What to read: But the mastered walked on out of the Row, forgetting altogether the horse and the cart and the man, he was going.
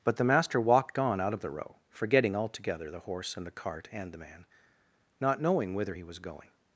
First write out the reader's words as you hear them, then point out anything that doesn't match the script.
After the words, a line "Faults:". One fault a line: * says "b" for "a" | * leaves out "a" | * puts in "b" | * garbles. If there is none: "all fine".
But the master walked on out of the Row, forgetting altogether the horse and the cart and the man, not knowing whither he was going.
Faults:
* says "master" for "mastered"
* puts in "not knowing whither"